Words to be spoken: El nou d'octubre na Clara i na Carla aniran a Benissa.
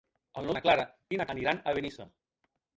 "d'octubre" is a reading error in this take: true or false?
true